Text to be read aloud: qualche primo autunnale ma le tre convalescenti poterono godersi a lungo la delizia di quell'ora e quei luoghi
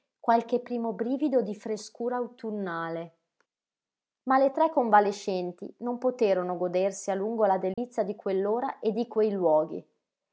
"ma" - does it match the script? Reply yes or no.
yes